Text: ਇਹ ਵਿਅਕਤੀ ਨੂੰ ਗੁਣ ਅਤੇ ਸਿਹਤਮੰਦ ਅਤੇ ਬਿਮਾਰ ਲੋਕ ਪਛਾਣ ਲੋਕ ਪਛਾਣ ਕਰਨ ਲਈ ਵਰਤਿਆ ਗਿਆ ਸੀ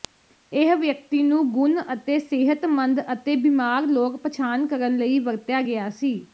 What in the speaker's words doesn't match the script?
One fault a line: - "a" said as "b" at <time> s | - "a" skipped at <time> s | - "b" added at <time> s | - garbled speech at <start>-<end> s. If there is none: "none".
- "ਲੋਕ ਪਛਾਣ" skipped at 4.7 s